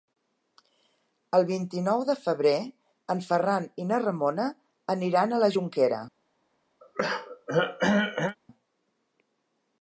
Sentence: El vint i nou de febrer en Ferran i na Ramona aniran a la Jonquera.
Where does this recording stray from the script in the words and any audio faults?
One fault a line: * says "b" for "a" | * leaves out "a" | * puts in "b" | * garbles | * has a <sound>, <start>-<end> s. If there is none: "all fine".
* has a throat clearing, 6.8-8.4 s